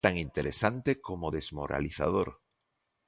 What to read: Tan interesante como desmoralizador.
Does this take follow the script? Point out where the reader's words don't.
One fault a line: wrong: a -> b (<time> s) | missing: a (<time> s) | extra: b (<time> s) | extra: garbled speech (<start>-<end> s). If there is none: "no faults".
no faults